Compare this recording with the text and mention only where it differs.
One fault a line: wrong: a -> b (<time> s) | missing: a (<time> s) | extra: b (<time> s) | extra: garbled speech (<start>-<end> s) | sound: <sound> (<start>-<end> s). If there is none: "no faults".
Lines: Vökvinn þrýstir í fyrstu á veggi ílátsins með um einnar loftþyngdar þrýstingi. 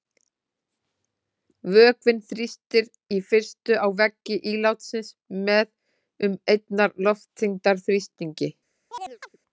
sound: chirp (8.9-9.4 s)